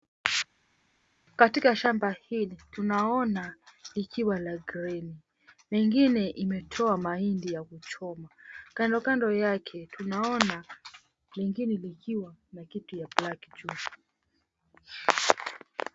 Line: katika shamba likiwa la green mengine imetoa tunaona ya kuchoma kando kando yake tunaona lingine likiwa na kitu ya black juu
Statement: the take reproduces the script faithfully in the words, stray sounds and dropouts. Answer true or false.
false